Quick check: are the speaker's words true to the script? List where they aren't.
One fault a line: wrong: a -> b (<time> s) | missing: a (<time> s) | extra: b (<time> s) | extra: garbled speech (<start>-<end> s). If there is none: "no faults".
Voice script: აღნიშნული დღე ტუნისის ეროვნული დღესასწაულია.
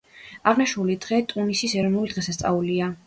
no faults